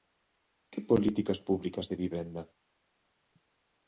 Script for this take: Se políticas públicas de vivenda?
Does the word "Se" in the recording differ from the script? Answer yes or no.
yes